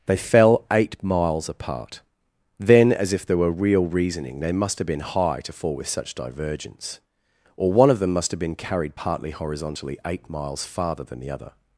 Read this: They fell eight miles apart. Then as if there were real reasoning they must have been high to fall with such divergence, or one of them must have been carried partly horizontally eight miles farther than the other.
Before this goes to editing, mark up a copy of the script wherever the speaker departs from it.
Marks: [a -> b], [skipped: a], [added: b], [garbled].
They fell eight miles apart. Then as if there were real reasoning they must have been high to fall with such divergence, or one of them must have been carried partly horizontally eight miles farther than the other.